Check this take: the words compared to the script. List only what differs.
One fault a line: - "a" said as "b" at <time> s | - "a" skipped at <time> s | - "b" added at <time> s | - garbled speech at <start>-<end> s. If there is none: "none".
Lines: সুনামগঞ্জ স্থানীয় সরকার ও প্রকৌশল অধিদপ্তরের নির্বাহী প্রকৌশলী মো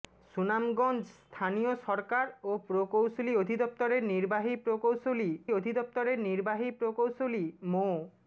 - "অধিদপ্তরের নির্বাহী প্রকৌশলী" added at 5.5 s